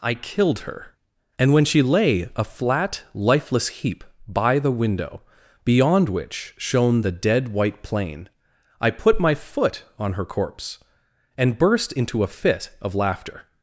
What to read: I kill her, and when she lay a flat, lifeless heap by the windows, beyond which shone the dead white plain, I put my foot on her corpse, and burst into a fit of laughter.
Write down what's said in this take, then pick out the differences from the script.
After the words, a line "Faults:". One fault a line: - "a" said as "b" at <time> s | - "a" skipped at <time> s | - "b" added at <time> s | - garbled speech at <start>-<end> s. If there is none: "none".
I killed her, and when she lay a flat, lifeless heap by the window, beyond which shone the dead white plain, I put my foot on her corpse, and burst into a fit of laughter.
Faults:
- "kill" said as "killed" at 0.1 s
- "windows" said as "window" at 4.7 s